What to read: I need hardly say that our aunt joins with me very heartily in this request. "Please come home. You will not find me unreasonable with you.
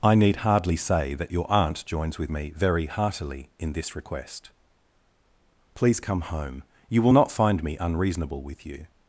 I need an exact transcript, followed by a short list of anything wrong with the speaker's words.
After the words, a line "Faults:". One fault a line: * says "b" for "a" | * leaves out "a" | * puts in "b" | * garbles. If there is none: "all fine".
I need hardly say that your aunt joins with me very heartily in this request. "Please come home. You will not find me unreasonable with you.
Faults:
* says "your" for "our"